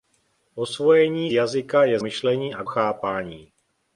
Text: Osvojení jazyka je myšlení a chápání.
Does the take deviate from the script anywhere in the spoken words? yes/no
no